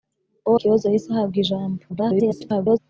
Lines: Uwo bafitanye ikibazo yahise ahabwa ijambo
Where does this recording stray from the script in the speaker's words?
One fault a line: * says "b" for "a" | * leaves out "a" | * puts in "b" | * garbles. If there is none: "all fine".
* leaves out "bafitanye"
* garbles